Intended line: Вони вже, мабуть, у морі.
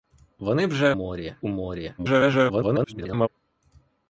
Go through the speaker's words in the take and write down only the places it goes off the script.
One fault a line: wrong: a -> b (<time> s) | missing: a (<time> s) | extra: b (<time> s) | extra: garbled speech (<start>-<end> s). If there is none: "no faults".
wrong: мабуть -> морі (0.9 s)
extra: garbled speech (2.0-3.3 s)